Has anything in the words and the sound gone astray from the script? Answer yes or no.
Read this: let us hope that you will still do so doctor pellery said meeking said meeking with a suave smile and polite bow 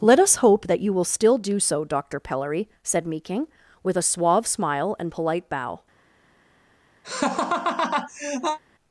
yes